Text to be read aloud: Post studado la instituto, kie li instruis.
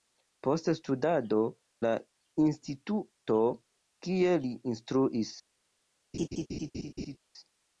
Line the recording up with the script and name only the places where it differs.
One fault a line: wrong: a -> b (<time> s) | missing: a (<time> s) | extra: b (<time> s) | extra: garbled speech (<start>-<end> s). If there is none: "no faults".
no faults